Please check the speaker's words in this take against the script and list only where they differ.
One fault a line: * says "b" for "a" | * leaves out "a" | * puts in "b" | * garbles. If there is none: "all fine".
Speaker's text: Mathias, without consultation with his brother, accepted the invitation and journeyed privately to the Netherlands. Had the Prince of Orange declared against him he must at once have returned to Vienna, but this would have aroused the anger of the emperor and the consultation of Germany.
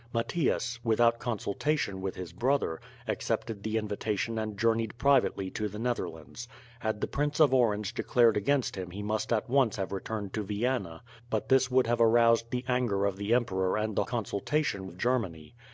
all fine